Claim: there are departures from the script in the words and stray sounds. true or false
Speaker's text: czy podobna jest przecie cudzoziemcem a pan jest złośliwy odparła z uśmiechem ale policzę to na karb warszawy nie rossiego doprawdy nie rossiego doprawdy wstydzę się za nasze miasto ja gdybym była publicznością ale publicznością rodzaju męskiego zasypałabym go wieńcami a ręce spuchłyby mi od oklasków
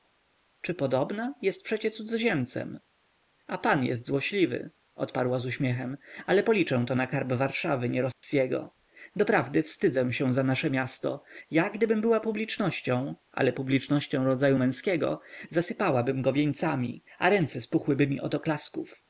true